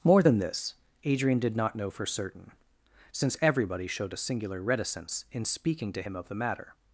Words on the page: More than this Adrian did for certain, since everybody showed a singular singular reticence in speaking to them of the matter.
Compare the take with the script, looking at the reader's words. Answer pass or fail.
fail